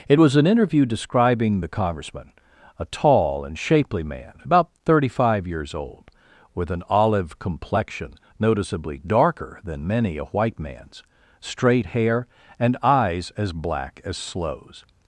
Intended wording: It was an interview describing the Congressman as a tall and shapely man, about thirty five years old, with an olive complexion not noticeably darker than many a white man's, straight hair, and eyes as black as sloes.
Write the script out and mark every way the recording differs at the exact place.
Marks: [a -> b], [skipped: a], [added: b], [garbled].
It was an interview describing the Congressman [skipped: as] a tall and shapely man, about thirty five years old, with an olive complexion [skipped: not] noticeably darker than many a white man's, straight hair, and eyes as black as sloes.